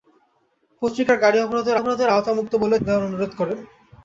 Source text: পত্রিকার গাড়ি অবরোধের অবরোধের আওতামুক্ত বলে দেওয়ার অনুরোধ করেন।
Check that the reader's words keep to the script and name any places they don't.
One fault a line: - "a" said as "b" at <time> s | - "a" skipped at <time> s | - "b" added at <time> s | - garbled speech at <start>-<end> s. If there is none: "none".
none